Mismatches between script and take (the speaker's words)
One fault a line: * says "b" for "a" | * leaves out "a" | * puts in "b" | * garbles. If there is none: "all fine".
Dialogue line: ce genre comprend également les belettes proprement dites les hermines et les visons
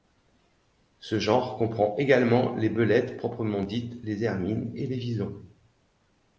all fine